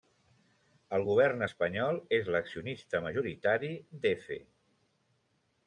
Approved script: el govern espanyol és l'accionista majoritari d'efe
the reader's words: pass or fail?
pass